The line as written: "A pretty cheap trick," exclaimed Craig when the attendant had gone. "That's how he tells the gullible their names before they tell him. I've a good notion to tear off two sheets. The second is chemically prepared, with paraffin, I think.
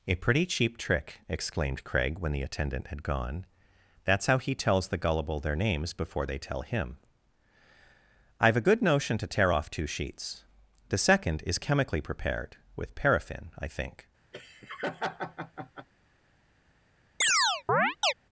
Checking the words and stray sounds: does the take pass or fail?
fail